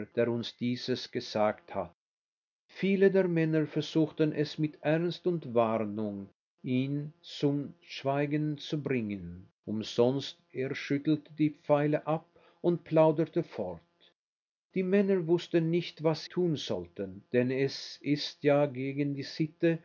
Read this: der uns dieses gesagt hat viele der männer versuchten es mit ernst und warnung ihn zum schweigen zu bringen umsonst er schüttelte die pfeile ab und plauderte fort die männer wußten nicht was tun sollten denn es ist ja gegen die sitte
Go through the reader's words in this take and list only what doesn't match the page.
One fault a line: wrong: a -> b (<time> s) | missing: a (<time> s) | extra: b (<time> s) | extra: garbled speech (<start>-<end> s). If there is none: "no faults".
no faults